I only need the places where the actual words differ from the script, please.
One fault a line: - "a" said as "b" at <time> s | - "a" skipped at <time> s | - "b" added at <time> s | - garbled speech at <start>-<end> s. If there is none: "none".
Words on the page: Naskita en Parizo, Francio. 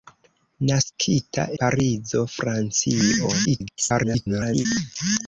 - "en" skipped at 1.4 s
- garbled speech at 3.4-4.7 s